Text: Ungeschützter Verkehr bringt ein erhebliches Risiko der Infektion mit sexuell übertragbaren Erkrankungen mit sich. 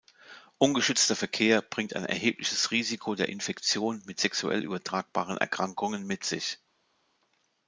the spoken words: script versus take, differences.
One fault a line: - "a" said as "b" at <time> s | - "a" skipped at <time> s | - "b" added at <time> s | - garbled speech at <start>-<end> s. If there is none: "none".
none